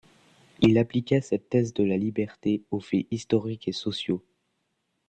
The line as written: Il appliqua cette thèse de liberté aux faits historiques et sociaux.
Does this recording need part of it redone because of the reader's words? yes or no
yes